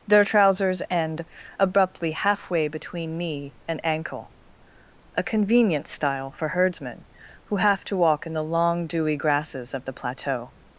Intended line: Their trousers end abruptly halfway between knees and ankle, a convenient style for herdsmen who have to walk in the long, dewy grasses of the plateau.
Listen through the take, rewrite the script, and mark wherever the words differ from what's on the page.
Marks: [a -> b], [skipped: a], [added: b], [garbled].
Their trousers end abruptly halfway between [knees -> knee] and ankle, a convenient style for herdsmen who have to walk in the long, dewy grasses of the plateau.